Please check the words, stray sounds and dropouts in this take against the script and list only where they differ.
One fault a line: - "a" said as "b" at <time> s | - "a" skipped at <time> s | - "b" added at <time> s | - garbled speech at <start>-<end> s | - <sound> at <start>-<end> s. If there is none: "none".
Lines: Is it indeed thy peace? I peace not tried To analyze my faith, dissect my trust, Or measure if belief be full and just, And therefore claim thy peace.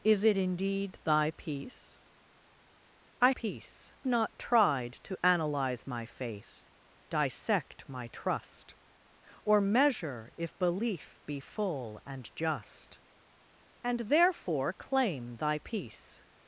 none